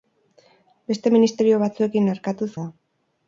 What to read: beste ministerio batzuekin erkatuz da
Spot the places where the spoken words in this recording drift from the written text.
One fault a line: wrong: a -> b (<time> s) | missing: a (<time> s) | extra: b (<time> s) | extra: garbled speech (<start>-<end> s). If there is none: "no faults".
no faults